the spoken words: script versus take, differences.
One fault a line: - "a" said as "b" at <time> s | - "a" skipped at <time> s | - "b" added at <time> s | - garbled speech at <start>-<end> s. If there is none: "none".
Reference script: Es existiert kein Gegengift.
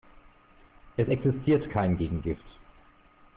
none